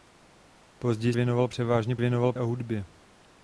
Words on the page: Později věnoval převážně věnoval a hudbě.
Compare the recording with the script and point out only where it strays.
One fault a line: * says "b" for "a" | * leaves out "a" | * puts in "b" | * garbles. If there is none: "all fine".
all fine